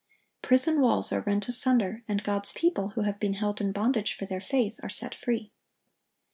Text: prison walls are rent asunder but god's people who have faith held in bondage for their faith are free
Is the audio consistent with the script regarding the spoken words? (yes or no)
no